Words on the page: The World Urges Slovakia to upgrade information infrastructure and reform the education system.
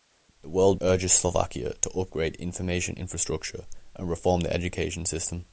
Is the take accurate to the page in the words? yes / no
yes